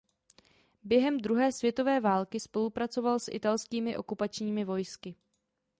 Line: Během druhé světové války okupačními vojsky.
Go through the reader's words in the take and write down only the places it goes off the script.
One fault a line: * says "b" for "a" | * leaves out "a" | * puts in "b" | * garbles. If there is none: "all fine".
* puts in "spolupracoval s italskými"